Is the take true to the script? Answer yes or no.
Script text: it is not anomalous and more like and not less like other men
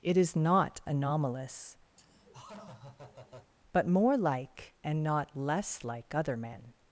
no